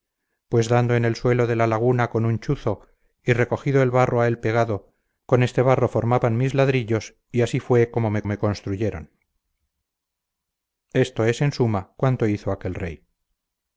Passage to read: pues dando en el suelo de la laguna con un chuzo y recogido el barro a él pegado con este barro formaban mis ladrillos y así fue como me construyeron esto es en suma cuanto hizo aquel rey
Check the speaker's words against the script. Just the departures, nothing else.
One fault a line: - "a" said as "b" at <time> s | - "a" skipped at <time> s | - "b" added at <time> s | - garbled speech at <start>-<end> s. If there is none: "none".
- "me" added at 8.2 s